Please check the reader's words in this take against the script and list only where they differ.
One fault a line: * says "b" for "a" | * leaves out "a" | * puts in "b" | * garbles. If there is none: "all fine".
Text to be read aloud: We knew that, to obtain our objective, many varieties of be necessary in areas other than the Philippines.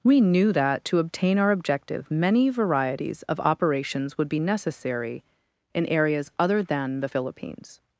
* puts in "operations would"